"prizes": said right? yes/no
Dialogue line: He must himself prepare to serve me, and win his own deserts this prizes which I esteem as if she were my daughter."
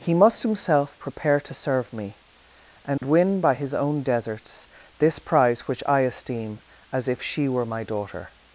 no